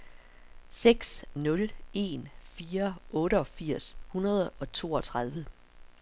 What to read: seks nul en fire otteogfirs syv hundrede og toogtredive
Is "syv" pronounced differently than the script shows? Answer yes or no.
yes